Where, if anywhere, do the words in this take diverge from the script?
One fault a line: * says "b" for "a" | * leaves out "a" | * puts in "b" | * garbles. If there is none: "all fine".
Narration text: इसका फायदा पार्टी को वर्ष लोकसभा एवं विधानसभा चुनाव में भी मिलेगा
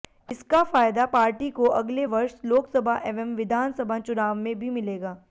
* puts in "अगले"